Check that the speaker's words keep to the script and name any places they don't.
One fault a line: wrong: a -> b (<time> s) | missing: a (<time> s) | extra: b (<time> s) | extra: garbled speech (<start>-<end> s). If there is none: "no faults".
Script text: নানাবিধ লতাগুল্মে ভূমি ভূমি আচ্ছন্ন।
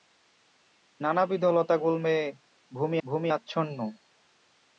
no faults